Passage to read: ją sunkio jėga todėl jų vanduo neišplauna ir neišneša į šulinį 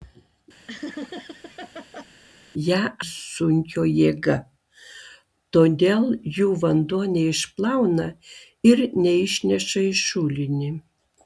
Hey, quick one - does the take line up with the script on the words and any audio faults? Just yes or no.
no